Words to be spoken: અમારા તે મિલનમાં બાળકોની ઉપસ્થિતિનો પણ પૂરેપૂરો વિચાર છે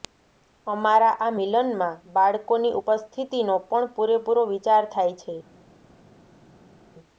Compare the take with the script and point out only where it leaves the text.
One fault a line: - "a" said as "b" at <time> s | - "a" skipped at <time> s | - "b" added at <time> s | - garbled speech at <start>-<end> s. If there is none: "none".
- "તે" said as "આ" at 1.2 s
- "થાય" added at 4.9 s